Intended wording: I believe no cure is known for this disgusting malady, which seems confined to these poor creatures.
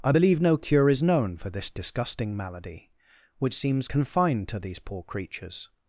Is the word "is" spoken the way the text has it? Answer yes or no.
yes